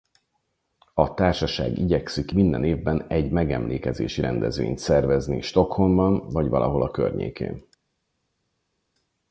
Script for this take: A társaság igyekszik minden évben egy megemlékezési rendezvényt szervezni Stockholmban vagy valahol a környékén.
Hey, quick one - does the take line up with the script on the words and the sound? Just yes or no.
yes